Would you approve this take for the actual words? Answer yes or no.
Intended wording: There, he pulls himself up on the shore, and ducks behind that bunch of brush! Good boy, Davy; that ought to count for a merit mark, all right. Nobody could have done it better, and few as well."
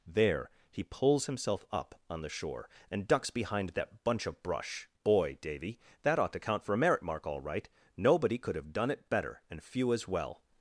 no